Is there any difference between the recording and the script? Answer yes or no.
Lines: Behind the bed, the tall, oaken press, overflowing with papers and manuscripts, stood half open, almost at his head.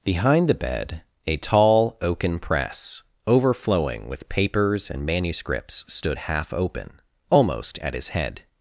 yes